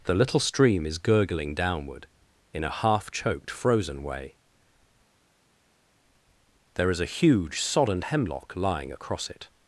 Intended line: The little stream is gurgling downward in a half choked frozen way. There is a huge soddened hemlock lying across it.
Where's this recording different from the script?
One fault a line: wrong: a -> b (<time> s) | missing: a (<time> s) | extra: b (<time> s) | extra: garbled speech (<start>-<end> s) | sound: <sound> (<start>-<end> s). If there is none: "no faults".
no faults